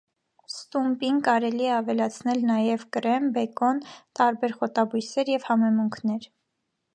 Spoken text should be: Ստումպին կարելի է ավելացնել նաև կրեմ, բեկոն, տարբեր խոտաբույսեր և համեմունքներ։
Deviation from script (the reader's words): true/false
false